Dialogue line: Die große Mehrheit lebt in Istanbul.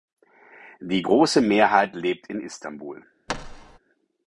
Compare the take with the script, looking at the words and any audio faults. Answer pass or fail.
fail